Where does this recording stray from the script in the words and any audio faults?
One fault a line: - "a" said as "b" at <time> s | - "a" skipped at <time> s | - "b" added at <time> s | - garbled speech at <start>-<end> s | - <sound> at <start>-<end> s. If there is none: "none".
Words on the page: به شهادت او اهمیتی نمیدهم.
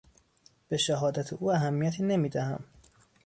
none